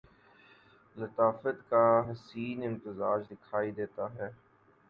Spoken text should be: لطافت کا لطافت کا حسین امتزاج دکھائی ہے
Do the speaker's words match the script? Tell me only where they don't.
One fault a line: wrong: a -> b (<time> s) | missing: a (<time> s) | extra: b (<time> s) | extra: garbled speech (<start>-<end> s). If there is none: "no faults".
missing: لطافت کا (1.8 s)
extra: دیتا (3.7 s)